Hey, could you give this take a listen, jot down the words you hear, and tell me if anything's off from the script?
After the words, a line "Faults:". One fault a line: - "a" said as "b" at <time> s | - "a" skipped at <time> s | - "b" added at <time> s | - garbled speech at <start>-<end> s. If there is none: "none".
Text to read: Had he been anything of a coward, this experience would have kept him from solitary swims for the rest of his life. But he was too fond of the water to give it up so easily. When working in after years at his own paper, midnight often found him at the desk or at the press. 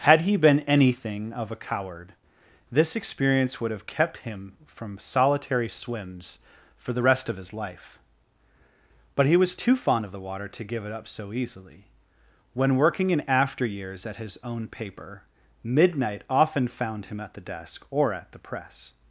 Had he been anything of a coward, this experience would have kept him from solitary swims for the rest of his life. But he was too fond of the water to give it up so easily. When working in after years at his own paper, midnight often found him at the desk or at the press.
Faults:
none